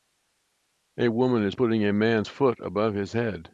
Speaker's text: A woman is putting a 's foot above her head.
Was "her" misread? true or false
true